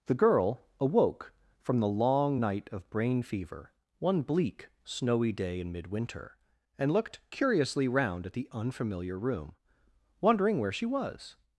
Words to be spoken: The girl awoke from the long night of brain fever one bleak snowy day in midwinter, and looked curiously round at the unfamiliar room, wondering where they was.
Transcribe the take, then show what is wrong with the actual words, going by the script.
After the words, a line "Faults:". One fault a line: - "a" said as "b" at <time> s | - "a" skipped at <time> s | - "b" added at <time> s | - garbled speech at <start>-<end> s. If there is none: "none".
The girl awoke from the long night of brain fever one bleak snowy day in midwinter, and looked curiously round at the unfamiliar room, wondering where she was.
Faults:
- "they" said as "she" at 10.7 s